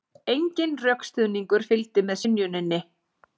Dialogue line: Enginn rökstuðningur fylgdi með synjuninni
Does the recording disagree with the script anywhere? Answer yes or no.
no